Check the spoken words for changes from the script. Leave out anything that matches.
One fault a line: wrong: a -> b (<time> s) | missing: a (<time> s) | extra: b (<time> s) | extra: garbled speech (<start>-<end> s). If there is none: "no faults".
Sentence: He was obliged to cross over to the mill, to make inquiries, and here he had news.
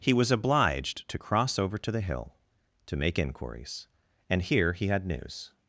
wrong: mill -> hill (2.0 s)